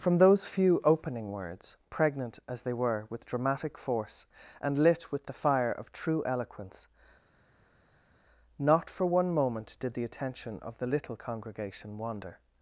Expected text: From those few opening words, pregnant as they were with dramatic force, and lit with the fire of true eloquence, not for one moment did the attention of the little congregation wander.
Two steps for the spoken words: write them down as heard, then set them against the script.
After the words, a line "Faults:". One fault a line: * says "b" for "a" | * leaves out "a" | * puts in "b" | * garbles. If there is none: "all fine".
From those few opening words, pregnant as they were with dramatic force, and lit with the fire of true eloquence, not for one moment did the attention of the little congregation wander.
Faults:
all fine